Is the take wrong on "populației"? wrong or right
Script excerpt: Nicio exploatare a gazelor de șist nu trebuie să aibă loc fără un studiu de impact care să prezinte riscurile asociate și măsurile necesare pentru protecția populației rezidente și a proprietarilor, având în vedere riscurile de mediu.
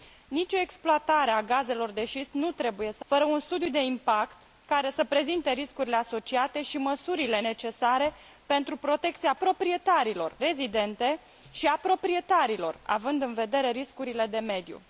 wrong